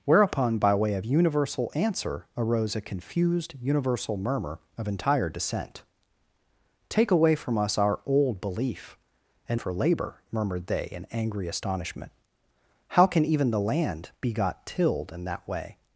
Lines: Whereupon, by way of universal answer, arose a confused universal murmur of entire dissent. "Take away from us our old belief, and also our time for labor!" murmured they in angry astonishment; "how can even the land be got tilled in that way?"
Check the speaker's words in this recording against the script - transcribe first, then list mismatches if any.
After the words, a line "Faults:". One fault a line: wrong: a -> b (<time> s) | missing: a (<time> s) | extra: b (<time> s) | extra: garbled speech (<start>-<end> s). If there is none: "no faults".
Whereupon, by way of universal answer, arose a confused universal murmur of entire dissent. "Take away from us our old belief, and for labor!" murmured they in angry astonishment; "how can even the land be got tilled in that way?"
Faults:
missing: also our time (9.6 s)